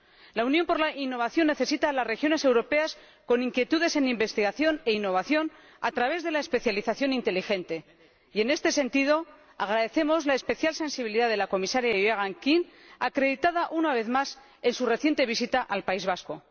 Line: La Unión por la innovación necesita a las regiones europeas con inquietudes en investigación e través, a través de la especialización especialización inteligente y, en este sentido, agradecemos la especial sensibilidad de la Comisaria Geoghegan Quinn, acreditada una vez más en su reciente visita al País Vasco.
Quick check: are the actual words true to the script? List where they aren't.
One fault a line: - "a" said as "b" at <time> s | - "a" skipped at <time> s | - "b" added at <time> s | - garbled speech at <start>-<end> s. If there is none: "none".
- "través" said as "innovación" at 4.9 s
- "especialización" skipped at 7.1 s